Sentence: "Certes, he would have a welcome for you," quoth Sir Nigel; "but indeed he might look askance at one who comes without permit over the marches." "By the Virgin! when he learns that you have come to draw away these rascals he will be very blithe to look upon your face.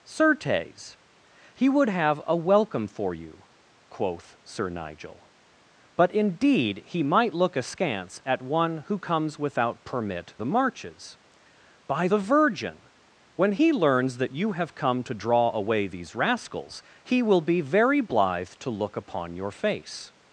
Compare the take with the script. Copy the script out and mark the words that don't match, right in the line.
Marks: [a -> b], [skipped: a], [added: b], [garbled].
"Certes, he would have a welcome for you," quoth Sir Nigel; "but indeed he might look askance at one who comes without permit [skipped: over] the marches." "By the Virgin! when he learns that you have come to draw away these rascals he will be very blithe to look upon your face.